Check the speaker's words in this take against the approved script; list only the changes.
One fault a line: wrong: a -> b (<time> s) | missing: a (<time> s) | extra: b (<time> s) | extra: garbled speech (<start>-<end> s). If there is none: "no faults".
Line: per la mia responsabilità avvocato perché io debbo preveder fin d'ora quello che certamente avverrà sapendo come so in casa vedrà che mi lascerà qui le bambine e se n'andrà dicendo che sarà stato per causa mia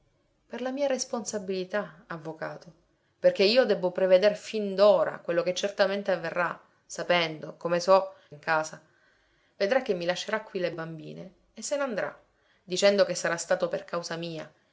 no faults